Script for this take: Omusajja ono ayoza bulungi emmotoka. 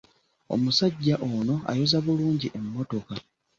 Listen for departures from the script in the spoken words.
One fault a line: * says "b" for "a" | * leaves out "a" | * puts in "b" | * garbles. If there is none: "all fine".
all fine